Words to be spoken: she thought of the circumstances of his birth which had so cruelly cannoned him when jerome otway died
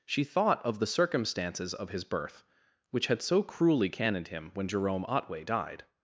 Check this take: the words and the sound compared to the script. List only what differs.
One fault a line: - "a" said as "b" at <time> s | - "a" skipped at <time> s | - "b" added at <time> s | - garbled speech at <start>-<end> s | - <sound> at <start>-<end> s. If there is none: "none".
none